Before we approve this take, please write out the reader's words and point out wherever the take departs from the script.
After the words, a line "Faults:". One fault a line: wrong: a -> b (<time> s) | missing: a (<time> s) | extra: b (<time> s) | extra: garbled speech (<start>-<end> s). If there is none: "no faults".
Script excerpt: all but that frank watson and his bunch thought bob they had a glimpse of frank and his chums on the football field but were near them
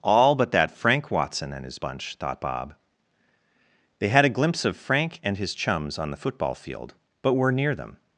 all but that frank watson and his bunch thought bob they had a glimpse of frank and his chums on the football field but were near them
Faults:
no faults